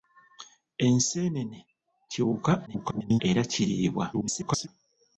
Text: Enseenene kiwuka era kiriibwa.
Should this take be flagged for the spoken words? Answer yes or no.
yes